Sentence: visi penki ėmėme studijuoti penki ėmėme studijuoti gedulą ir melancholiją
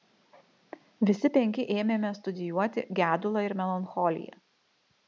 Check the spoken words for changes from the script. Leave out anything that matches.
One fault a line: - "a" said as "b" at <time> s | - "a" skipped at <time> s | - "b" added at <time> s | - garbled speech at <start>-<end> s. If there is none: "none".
- "penki ėmėme studijuoti" skipped at 2.9 s